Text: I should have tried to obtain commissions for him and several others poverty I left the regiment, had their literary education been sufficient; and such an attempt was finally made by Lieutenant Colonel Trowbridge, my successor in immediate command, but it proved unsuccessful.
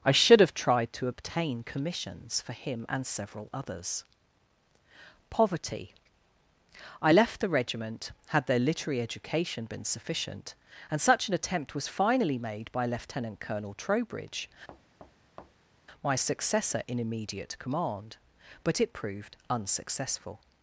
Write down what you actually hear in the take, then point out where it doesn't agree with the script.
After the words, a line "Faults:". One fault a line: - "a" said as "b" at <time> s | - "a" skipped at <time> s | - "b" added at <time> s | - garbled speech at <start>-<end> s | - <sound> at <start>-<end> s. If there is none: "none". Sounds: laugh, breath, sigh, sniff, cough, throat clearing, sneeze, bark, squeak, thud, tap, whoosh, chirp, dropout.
I should have tried to obtain commissions for him and several others poverty I left the regiment, had their literary education been sufficient; and such an attempt was finally made by Lieutenant Colonel Trowbridge, my successor in immediate command, but it proved unsuccessful.
Faults:
- thud at 14.7-15.7 s